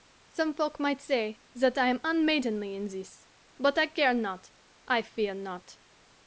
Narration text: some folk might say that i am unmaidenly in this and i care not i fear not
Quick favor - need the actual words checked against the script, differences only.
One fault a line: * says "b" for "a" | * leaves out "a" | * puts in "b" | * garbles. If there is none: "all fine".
* says "but" for "and"